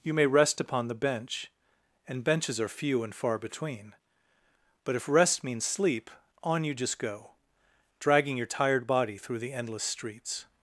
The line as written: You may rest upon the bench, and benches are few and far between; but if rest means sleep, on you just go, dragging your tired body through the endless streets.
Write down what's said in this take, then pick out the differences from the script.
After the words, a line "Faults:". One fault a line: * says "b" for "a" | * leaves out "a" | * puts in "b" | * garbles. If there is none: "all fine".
You may rest upon the bench, and benches are few and far between; but if rest means sleep, on you just go, dragging your tired body through the endless streets.
Faults:
all fine